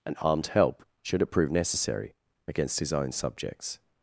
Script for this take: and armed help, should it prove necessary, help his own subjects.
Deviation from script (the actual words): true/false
true